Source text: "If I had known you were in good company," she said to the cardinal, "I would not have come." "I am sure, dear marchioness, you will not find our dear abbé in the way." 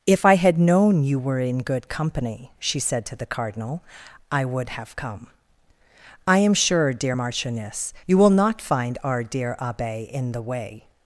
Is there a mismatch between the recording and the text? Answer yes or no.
yes